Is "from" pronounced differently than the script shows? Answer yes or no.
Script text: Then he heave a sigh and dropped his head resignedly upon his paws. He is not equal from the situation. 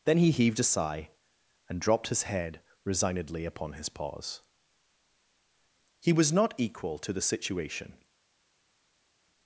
yes